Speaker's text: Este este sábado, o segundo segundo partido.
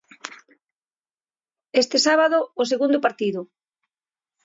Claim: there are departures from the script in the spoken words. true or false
true